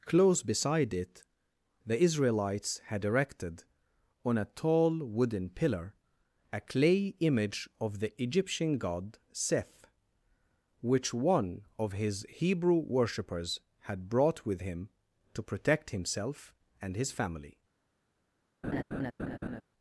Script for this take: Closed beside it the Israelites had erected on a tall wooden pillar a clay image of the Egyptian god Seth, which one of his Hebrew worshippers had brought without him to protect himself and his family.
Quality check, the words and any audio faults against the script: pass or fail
fail